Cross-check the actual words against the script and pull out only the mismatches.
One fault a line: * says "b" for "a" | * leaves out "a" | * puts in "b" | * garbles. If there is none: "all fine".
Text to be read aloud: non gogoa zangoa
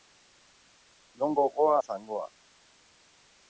all fine